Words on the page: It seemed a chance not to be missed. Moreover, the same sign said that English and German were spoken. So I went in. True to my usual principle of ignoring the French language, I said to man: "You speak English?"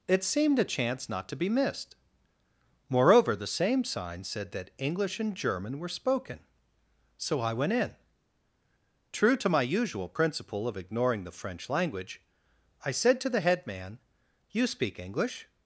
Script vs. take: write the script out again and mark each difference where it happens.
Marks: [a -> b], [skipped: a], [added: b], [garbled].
It seemed a chance not to be missed. Moreover, the same sign said that English and German were spoken. So I went in. True to my usual principle of ignoring the French language, I said to [added: the head] man: "You speak English?"